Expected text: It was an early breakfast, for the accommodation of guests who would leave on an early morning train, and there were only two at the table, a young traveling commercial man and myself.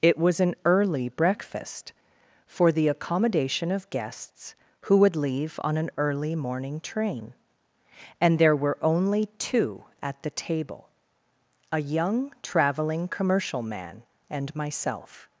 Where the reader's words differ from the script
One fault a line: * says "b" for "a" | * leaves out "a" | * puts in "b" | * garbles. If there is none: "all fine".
all fine